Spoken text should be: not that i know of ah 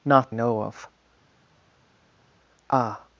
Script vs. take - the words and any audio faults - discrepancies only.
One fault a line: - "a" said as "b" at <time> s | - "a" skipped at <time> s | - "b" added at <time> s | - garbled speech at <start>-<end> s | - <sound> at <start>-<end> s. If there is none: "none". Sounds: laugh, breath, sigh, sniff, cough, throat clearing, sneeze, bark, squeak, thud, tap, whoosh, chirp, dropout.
- "that i" skipped at 0.3 s